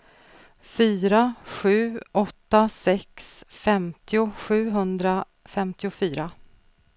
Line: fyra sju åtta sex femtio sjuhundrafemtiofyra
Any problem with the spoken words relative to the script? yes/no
no